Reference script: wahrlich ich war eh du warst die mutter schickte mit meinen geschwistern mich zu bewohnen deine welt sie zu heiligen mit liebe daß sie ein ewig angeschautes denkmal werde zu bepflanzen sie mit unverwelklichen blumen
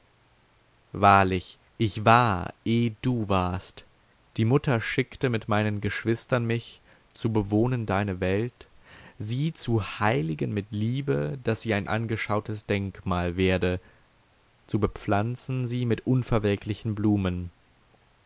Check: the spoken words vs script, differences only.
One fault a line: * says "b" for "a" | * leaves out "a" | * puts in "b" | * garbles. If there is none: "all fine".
* leaves out "ewig"